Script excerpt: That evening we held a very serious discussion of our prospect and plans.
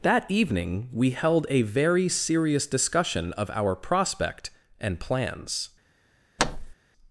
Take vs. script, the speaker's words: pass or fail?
pass